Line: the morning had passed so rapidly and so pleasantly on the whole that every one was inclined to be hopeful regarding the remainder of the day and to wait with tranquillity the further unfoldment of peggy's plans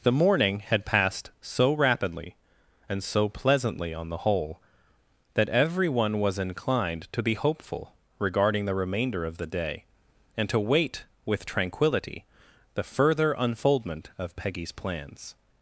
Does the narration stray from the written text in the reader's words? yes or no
no